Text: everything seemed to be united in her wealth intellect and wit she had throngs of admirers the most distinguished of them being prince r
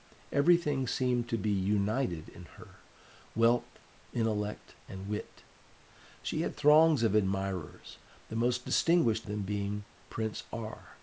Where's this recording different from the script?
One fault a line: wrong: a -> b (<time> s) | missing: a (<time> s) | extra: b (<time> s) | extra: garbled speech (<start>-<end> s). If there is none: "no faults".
missing: of (9.3 s)